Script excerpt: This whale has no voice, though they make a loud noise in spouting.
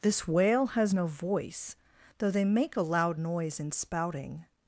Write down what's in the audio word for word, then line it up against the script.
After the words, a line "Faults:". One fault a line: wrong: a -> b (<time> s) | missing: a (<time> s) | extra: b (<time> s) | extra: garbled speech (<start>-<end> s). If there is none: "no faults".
This whale has no voice, though they make a loud noise in spouting.
Faults:
no faults